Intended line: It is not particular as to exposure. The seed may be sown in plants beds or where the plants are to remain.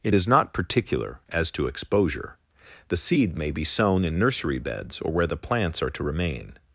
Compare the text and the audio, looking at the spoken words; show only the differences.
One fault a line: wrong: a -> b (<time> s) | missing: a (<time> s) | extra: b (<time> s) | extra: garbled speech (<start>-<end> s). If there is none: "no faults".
wrong: plants -> nursery (4.2 s)